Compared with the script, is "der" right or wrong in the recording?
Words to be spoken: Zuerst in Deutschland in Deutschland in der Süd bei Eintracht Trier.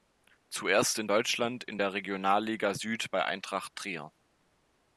wrong